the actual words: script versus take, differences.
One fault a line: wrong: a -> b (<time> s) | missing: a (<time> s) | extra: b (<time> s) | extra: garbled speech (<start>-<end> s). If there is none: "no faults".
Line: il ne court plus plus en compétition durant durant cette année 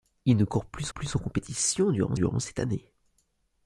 no faults